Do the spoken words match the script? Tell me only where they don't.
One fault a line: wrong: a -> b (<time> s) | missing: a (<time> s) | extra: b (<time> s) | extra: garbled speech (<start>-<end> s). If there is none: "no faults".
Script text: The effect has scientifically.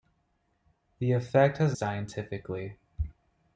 no faults